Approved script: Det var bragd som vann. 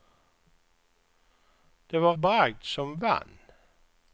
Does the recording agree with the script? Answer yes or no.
yes